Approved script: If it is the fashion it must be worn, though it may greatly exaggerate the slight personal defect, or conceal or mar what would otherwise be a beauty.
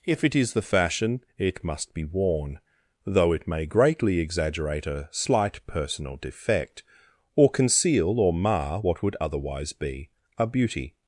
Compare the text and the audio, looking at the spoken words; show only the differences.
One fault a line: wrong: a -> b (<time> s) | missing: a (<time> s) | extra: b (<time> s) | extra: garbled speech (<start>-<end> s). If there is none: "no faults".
wrong: the -> a (4.9 s)